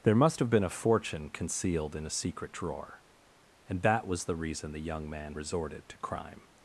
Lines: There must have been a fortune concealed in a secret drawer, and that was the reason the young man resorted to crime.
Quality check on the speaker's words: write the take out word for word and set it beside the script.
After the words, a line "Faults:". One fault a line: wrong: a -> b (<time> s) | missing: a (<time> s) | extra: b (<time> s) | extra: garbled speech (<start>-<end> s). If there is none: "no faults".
There must have been a fortune concealed in a secret drawer, and that was the reason the young man resorted to crime.
Faults:
no faults